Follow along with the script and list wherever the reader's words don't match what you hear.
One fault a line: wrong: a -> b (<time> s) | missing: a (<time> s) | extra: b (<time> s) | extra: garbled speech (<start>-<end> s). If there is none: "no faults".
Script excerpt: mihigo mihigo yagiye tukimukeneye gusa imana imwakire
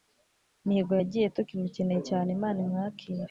missing: mihigo (0.9 s)
wrong: gusa -> cyane (2.1 s)